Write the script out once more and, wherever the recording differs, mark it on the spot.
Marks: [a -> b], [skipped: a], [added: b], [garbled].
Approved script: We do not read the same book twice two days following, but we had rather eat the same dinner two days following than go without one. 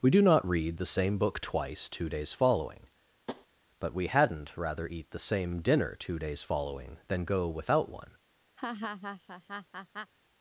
We do not read the same book twice two days following, but we [had -> hadn't] rather eat the same dinner two days following than go without one.